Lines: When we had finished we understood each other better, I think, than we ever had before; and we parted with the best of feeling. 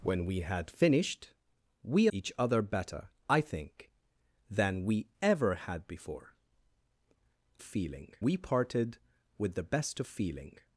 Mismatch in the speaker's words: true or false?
true